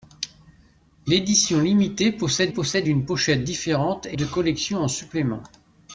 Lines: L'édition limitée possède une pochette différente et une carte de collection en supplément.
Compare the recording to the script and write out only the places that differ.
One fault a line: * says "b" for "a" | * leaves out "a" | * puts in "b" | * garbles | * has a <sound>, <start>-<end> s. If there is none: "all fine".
* puts in "possède"
* leaves out "une carte"